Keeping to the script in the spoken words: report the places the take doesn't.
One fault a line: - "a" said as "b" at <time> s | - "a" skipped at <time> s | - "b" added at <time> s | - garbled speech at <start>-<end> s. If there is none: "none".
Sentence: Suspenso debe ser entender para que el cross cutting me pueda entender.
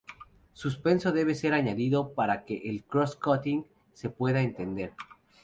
- "entender" said as "añadido" at 1.5 s
- "me" said as "se" at 3.9 s